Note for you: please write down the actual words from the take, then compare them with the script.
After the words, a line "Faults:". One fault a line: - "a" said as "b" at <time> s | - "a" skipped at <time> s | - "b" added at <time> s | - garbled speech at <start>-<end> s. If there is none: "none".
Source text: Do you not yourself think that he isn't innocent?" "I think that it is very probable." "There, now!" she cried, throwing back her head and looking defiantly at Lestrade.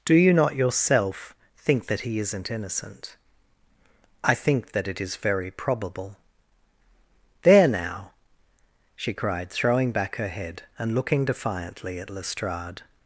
Do you not yourself think that he isn't innocent?" "I think that it is very probable." "There, now!" she cried, throwing back her head and looking defiantly at Lestrade.
Faults:
none